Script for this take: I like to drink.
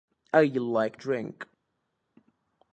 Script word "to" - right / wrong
wrong